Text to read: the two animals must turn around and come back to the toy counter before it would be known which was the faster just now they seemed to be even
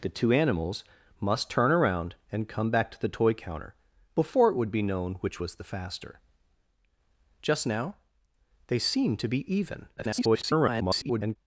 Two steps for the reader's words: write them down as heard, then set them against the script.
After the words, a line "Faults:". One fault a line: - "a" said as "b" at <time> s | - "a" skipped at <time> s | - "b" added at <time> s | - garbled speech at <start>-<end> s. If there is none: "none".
the two animals must turn around and come back to the toy counter before it would be known which was the faster just now they seemed to be even [garbled]
Faults:
- garbled speech at 10.0-11.4 s